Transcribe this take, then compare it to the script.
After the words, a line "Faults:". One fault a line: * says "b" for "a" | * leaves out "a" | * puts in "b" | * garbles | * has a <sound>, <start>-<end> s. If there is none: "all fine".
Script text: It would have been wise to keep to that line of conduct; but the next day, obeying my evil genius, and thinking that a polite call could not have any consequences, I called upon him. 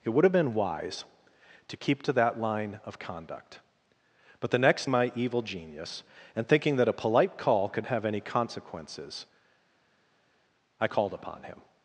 It would have been wise to keep to that line of conduct; but the next my evil genius, and thinking that a polite call could have any consequences, I called upon him.
Faults:
* leaves out "day obeying"
* leaves out "not"